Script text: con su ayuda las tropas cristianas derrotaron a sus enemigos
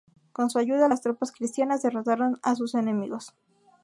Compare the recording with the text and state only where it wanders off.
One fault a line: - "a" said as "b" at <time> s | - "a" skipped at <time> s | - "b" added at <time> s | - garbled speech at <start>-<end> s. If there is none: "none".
none